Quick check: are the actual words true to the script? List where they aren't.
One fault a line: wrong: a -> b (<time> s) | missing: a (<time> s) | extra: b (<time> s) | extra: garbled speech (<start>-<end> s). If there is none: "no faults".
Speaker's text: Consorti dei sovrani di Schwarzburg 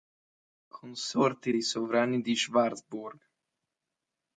no faults